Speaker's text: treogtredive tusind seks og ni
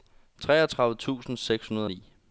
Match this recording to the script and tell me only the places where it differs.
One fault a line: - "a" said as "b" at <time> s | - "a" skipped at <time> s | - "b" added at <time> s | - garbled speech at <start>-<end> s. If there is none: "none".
- "hundrede" added at 1.7 s